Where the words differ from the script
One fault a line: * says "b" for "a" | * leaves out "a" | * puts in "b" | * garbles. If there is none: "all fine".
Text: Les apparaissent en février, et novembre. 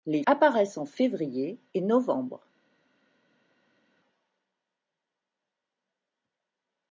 all fine